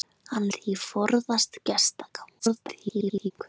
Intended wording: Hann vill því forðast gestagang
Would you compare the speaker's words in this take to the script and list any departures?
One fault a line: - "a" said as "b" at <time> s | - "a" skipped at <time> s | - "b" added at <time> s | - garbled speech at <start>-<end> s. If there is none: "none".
- "vill" skipped at 0.5 s
- garbled speech at 2.4-3.3 s